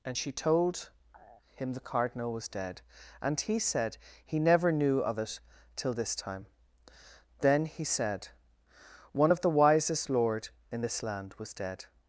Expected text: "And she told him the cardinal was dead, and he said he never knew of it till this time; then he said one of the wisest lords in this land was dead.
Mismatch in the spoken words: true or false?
true